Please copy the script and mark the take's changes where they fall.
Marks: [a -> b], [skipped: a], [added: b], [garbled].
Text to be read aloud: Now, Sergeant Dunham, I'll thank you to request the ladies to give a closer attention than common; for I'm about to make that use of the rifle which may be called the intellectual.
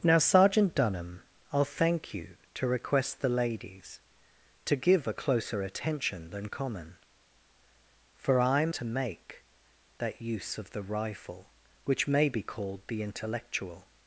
Now, Sergeant Dunham, I'll thank you to request the ladies to give a closer attention than common; for I'm [skipped: about] to make that use of the rifle which may be called the intellectual.